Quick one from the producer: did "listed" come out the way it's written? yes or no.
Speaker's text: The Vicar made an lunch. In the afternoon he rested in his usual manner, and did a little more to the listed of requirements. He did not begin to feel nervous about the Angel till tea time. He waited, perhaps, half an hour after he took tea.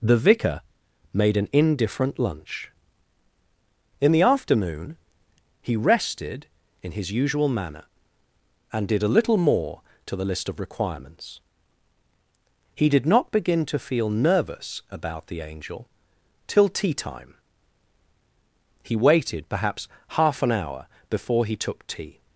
no